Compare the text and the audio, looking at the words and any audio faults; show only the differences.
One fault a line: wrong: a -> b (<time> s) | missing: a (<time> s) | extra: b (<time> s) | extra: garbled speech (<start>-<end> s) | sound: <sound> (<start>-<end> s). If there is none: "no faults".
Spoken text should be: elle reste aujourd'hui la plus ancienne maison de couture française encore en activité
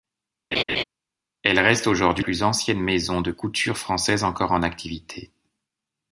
sound: laugh (0.5-0.8 s)
missing: la (2.2 s)